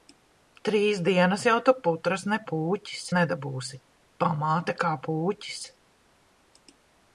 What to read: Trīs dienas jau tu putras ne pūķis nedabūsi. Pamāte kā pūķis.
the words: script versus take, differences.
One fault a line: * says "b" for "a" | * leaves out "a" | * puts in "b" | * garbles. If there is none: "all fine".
all fine